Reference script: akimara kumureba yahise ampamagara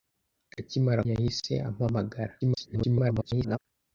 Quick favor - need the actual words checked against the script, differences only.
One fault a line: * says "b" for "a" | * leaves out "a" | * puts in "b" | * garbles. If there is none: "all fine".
* leaves out "kumureba"
* garbles